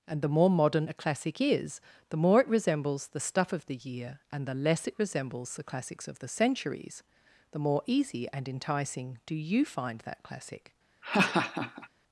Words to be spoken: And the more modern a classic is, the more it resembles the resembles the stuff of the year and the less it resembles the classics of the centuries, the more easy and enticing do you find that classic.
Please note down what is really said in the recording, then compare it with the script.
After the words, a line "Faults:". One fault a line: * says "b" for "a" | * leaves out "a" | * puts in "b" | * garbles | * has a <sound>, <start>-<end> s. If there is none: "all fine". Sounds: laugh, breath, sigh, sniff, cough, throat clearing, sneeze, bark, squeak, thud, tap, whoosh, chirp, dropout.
And the more modern a classic is, the more it resembles the stuff of the year and the less it resembles the classics of the centuries, the more easy and enticing do you find that classic.
Faults:
* leaves out "resembles the"
* has a laugh, 11.0-11.9 s